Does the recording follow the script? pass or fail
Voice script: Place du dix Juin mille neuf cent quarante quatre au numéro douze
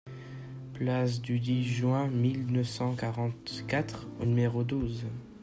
pass